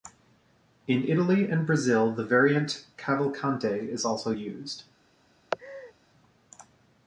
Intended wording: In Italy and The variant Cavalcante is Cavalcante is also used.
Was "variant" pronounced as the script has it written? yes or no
yes